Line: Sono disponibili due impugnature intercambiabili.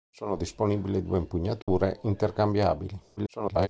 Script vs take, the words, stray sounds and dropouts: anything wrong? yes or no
yes